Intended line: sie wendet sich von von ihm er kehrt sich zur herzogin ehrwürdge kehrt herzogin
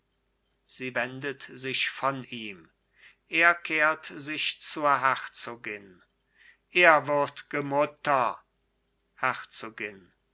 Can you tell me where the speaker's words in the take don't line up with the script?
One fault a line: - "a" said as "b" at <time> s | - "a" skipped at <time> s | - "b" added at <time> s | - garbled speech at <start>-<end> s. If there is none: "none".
- "von" skipped at 2.2 s
- "kehrt" said as "mutter" at 7.6 s